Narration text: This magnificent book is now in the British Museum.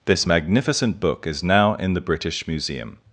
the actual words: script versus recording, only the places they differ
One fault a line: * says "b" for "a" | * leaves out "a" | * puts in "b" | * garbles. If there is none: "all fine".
all fine